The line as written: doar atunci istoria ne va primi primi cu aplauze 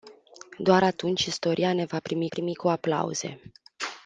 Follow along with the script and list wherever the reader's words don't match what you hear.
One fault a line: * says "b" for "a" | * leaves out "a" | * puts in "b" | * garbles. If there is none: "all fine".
all fine